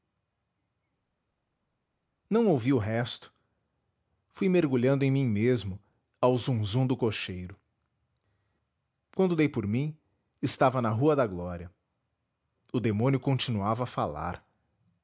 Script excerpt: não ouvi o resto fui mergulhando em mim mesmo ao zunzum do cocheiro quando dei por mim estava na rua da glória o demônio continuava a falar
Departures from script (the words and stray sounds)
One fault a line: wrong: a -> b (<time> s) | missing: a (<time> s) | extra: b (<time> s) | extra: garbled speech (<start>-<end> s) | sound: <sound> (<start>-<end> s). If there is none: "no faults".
no faults